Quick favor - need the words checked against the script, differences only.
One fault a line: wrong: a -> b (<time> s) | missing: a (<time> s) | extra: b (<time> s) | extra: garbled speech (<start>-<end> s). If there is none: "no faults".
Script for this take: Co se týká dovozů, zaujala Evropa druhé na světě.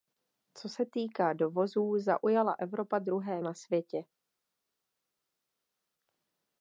no faults